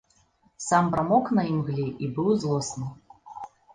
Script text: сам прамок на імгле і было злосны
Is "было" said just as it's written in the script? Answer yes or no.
no